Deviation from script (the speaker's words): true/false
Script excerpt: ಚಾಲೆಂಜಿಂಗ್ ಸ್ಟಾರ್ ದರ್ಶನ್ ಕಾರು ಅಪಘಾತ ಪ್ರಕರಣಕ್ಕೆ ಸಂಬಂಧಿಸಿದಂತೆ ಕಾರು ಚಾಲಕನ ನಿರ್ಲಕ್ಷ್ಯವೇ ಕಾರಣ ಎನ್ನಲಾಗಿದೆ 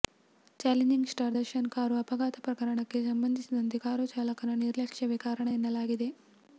false